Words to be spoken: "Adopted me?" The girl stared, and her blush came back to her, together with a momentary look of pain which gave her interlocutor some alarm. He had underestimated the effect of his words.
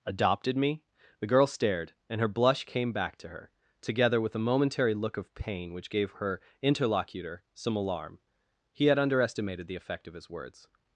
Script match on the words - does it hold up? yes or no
yes